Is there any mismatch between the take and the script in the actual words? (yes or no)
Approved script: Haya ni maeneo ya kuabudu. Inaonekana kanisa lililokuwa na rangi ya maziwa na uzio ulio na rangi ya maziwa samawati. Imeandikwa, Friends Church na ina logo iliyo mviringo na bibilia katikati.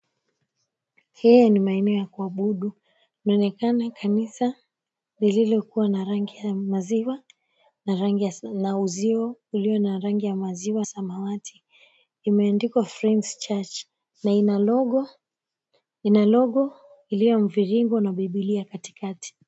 no